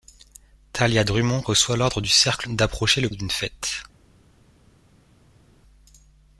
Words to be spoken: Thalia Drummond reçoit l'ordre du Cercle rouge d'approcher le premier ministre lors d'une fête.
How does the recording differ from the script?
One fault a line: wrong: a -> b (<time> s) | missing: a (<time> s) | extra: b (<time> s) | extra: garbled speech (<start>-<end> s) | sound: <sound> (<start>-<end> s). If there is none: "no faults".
missing: rouge (2.5 s)
missing: premier ministre lors (3.1 s)